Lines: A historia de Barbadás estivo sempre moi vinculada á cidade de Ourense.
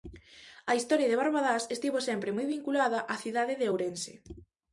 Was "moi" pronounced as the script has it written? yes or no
yes